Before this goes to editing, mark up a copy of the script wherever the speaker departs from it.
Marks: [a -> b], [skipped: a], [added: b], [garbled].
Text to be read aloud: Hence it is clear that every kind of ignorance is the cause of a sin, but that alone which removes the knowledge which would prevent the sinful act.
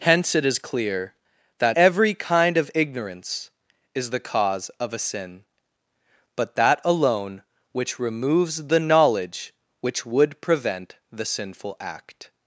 Hence it is clear that every kind of ignorance is the cause of a sin, but that alone which removes the knowledge which would prevent the sinful act.